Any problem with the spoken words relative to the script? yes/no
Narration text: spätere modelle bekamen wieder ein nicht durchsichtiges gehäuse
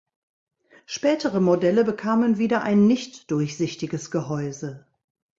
no